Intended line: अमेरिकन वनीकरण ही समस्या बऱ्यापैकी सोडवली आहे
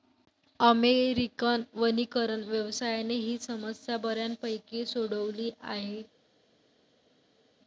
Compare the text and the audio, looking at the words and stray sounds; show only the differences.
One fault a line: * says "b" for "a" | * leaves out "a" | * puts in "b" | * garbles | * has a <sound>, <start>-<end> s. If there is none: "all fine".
* puts in "व्यवसायाने"